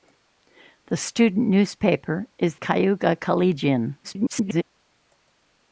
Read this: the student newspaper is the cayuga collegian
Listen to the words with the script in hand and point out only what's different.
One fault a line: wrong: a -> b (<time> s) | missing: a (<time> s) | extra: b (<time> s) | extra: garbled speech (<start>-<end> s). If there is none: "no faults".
missing: the (2.5 s)
extra: garbled speech (4.0-4.6 s)